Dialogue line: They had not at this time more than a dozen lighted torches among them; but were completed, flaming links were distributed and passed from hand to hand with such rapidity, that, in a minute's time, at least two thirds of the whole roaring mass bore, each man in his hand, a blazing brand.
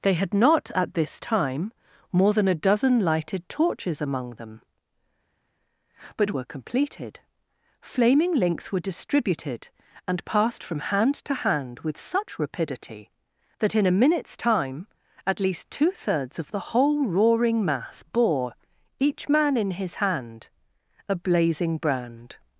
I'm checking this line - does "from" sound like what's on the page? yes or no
yes